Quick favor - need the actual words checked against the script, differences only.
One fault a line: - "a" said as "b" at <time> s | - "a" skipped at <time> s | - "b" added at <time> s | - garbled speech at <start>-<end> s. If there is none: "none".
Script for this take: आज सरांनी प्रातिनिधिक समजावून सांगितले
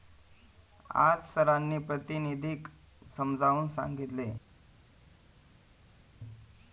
none